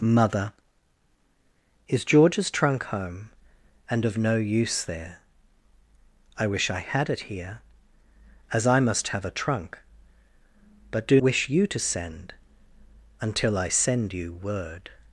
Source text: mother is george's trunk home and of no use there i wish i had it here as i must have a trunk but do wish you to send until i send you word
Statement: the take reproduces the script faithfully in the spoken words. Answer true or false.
true